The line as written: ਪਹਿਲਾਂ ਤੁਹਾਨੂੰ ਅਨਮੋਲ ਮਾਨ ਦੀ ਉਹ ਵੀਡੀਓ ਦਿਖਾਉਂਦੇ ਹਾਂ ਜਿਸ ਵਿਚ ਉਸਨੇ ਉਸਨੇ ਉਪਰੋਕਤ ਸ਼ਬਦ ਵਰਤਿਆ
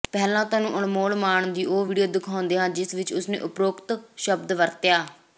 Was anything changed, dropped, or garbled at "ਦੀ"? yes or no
no